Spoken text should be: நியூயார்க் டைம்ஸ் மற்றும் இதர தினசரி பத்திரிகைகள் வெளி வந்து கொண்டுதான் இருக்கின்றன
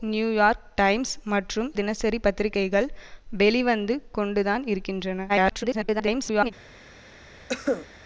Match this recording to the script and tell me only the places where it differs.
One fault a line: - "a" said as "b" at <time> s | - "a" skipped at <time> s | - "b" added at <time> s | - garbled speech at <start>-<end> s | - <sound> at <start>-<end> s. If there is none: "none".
- "இதர" skipped at 1.7 s
- garbled speech at 5.3-6.5 s
- cough at 7.5-7.9 s